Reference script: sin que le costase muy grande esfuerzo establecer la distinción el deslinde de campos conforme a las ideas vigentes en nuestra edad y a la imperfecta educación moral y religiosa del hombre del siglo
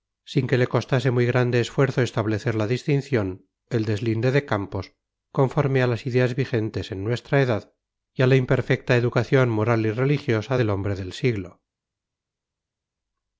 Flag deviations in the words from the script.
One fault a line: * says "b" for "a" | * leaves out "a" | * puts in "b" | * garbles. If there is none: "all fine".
all fine